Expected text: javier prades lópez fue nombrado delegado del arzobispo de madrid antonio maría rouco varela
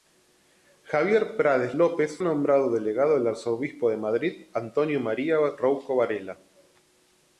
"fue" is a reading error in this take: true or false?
true